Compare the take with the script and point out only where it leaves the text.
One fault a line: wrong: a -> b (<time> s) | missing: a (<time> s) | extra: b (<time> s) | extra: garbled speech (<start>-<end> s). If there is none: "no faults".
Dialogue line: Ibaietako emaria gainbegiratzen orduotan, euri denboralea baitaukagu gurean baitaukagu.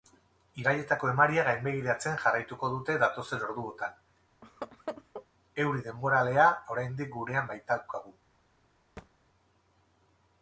extra: jarraituko dute datozen (2.2 s)
wrong: baitaukagu -> oraindik (6.8 s)